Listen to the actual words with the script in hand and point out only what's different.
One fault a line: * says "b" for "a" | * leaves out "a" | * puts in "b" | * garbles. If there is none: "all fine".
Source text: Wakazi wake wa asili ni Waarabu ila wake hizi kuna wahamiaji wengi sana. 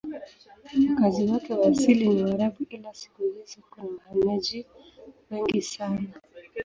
* says "siku" for "wake"